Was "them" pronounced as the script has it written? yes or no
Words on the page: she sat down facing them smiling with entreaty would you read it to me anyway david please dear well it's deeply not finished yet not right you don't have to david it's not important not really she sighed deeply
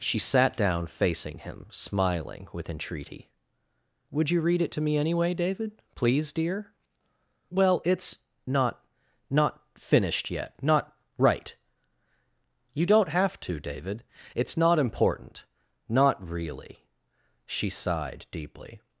no